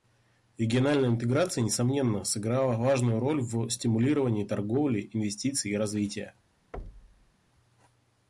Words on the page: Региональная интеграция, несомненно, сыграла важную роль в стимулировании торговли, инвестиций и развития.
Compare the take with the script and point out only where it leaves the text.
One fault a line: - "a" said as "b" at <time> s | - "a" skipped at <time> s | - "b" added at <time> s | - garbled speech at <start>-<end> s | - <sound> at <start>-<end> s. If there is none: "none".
- thud at 6.7-7.3 s